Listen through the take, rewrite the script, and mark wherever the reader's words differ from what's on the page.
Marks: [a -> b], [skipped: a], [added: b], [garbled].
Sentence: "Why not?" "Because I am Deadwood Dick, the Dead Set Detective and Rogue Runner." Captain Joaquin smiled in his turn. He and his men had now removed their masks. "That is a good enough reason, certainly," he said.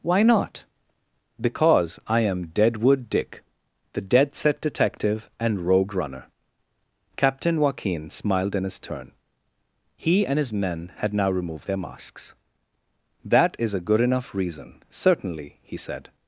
"Why not?" "Because I am Deadwood Dick, the Dead Set Detective and Rogue Runner." Captain Joaquin smiled in his turn. He and his men had now removed their masks. "That is a good enough reason, certainly," he said.